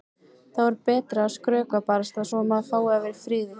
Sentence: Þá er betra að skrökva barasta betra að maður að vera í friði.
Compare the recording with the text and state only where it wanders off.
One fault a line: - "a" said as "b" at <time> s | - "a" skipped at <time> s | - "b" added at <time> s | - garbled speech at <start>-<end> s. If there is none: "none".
- "betra" said as "svo" at 2.3 s
- "fái" added at 2.7 s